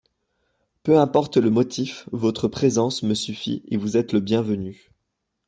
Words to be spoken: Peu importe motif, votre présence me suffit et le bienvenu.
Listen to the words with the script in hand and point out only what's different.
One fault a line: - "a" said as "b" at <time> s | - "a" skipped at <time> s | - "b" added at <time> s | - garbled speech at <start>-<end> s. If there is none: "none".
- "le" added at 1.4 s
- "vous êtes" added at 3.8 s